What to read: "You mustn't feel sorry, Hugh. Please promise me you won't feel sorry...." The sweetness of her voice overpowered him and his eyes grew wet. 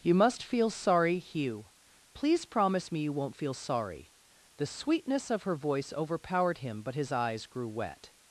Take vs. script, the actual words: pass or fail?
fail